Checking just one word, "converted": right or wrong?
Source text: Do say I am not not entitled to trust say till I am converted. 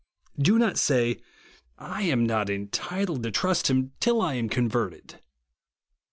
right